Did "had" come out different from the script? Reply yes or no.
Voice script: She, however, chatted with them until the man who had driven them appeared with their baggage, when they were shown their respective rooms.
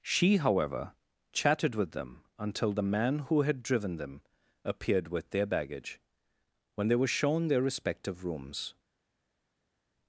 no